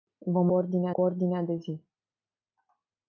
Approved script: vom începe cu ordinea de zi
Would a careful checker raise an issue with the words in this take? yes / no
yes